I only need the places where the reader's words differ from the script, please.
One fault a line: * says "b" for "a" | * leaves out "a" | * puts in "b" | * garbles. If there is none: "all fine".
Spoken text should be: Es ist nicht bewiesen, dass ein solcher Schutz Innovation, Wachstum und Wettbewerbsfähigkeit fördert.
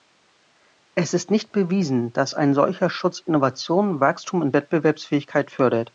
all fine